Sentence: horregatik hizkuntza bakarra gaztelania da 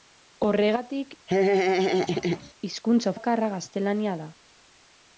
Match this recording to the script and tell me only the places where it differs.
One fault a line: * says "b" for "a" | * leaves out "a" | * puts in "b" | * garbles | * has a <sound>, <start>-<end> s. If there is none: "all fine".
* has a laugh, 1.3-2.5 s